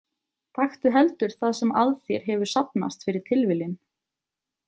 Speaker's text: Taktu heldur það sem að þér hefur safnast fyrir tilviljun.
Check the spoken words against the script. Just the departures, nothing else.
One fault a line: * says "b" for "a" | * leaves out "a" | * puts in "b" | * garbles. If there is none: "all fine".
all fine